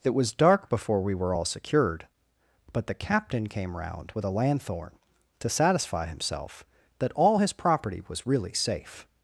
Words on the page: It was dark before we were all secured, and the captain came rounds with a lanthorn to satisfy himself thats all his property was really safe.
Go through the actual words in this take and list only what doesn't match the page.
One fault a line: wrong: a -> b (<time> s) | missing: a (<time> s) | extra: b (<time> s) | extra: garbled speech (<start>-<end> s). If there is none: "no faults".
wrong: and -> but (2.7 s)
wrong: rounds -> round (3.8 s)
wrong: thats -> that (7.0 s)